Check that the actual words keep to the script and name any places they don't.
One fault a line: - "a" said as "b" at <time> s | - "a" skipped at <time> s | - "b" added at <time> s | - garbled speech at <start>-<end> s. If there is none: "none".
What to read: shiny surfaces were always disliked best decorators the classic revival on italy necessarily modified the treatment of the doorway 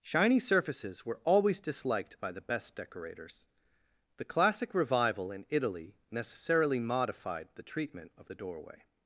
- "by the" added at 2.2 s
- "on" said as "in" at 5.3 s